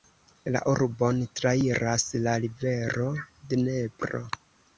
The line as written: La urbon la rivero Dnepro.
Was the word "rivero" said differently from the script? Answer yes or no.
no